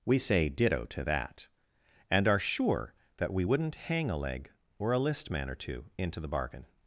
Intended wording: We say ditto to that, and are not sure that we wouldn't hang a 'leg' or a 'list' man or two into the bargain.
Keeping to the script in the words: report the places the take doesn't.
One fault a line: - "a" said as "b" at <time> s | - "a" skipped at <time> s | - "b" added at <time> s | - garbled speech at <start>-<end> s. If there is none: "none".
- "not" skipped at 2.4 s